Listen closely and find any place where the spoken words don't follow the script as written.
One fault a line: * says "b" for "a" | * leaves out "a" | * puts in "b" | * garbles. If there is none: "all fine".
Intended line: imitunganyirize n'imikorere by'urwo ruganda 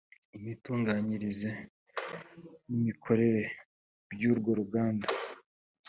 all fine